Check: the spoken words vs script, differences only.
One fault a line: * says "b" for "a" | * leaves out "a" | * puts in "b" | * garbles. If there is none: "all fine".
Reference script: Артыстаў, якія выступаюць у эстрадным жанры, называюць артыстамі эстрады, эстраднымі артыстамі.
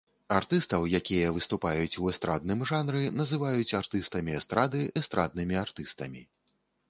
all fine